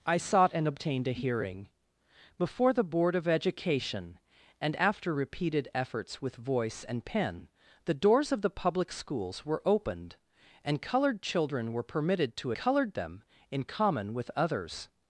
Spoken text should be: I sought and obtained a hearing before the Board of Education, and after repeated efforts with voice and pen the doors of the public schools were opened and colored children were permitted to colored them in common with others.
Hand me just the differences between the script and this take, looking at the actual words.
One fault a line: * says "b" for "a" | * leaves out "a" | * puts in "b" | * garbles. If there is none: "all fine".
all fine